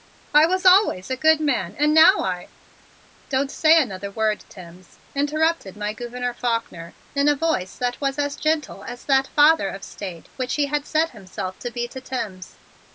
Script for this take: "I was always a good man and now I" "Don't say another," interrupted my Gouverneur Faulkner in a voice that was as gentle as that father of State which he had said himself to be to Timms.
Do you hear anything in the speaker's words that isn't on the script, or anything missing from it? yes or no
yes